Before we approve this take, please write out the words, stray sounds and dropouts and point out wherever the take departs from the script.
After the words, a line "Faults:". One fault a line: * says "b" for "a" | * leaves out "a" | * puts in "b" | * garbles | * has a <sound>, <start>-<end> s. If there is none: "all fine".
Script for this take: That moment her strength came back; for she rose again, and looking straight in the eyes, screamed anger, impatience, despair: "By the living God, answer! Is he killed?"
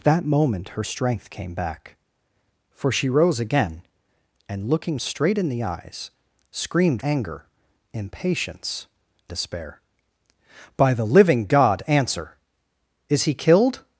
That moment her strength came back; for she rose again, and looking straight in the eyes, screamed anger, impatience, despair: "By the living God, answer! Is he killed?"
Faults:
all fine